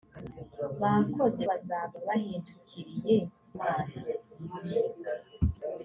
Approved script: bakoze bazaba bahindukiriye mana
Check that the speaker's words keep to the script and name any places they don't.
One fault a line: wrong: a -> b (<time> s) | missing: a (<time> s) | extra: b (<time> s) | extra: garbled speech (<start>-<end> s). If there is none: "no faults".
no faults